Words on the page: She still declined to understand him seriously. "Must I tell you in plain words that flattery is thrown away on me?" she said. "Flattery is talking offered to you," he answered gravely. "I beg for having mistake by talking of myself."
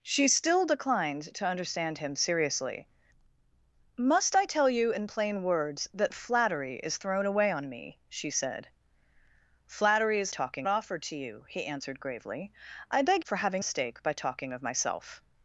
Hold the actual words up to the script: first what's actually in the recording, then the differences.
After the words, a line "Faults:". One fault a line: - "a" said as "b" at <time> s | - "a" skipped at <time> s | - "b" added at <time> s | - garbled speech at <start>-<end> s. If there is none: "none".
She still declined to understand him seriously. "Must I tell you in plain words that flattery is thrown away on me?" she said. "Flattery is talking offered to you," he answered gravely. "I beg for having mistake by talking of myself."
Faults:
none